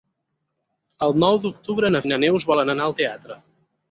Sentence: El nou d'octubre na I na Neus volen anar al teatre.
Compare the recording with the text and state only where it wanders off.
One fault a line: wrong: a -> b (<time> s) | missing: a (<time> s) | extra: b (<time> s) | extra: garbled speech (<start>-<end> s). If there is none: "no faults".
no faults